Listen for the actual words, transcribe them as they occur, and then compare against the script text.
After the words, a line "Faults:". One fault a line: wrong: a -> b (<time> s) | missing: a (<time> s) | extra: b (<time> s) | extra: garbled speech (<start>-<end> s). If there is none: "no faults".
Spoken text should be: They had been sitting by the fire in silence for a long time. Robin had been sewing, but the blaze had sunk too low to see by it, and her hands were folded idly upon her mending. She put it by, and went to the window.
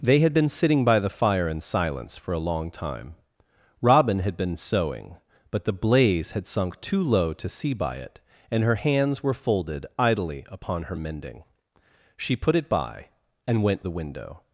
They had been sitting by the fire in silence for a long time. Robin had been sewing, but the blaze had sunk too low to see by it, and her hands were folded idly upon her mending. She put it by, and went the window.
Faults:
missing: to (13.8 s)